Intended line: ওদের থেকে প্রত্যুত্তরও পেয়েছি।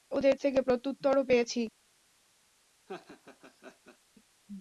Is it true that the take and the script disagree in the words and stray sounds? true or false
true